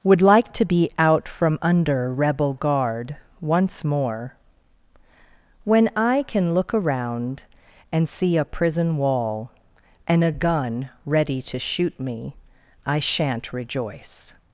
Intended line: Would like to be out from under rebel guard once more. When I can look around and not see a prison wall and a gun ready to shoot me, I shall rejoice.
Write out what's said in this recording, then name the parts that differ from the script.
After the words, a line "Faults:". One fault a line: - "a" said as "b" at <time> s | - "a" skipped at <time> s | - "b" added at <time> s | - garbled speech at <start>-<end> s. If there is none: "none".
Would like to be out from under rebel guard once more. When I can look around and see a prison wall and a gun ready to shoot me, I shan't rejoice.
Faults:
- "not" skipped at 8.1 s
- "shall" said as "shan't" at 13.0 s